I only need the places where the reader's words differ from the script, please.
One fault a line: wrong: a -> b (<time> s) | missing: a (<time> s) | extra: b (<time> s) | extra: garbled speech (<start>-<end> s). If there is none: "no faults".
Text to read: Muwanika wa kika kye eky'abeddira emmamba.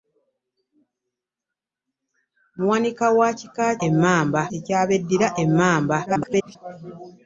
wrong: kye -> emmamba (3.9 s)
extra: garbled speech (6.1-6.6 s)